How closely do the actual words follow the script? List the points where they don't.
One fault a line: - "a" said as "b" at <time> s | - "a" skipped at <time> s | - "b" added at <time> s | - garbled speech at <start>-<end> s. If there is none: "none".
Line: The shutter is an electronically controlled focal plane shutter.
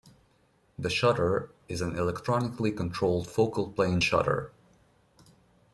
none